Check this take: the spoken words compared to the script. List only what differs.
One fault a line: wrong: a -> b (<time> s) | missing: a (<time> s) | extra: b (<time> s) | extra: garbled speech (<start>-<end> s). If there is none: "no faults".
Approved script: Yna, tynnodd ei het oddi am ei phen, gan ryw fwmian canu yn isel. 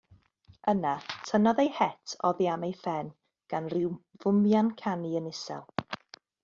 no faults